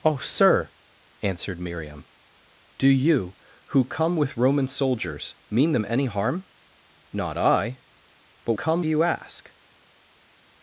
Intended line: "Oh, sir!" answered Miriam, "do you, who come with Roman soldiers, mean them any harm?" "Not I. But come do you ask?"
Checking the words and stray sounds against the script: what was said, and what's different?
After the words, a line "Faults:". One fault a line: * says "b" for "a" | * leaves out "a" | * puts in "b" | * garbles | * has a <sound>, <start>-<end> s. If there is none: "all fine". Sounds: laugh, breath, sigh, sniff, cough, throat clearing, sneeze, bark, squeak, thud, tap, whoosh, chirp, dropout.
"Oh, sir!" answered Miriam, "do you, who come with Roman soldiers, mean them any harm?" "Not I. But come do you ask?"
Faults:
all fine